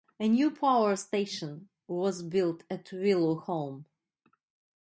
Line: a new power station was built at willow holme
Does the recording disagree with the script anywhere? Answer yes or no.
no